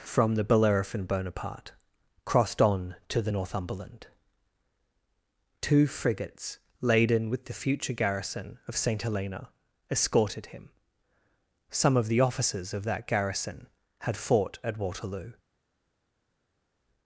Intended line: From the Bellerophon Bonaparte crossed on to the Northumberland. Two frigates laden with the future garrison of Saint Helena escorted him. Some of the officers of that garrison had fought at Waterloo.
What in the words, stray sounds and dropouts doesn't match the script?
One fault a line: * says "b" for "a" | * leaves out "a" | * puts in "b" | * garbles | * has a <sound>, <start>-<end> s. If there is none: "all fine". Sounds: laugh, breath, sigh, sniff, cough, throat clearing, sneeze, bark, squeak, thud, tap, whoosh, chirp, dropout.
all fine